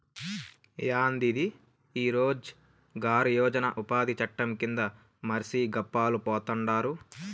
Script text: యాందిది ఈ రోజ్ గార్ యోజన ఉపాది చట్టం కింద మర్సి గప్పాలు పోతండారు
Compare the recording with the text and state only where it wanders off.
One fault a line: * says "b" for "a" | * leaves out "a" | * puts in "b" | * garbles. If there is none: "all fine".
all fine